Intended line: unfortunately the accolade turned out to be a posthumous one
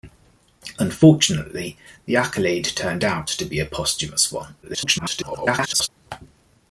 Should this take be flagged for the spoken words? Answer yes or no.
yes